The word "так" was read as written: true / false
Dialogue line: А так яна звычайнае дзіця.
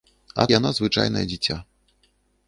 false